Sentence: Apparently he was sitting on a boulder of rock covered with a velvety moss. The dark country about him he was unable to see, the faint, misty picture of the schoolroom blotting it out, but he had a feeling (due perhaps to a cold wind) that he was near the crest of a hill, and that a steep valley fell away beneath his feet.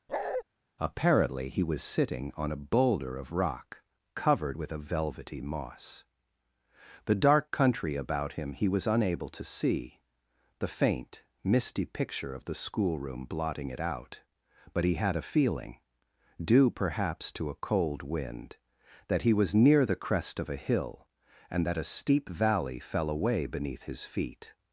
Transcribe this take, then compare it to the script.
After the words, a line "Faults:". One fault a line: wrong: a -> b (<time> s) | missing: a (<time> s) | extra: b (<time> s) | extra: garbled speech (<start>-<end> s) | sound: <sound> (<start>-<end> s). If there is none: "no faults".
Apparently he was sitting on a boulder of rock covered with a velvety moss. The dark country about him he was unable to see, the faint, misty picture of the schoolroom blotting it out, but he had a feeling (due perhaps to a cold wind) that he was near the crest of a hill, and that a steep valley fell away beneath his feet.
Faults:
sound: bark (0.1-0.4 s)